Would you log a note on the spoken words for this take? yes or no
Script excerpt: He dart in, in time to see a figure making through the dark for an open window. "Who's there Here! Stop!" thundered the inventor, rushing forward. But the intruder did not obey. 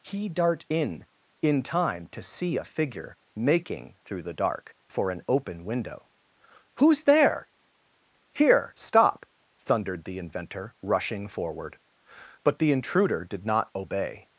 no